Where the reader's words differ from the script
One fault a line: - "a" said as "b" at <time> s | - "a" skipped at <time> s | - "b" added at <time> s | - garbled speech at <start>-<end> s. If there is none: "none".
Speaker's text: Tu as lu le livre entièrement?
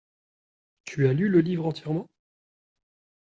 none